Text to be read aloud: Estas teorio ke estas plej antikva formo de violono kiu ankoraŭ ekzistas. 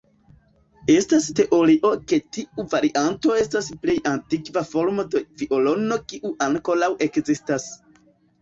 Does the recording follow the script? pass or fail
fail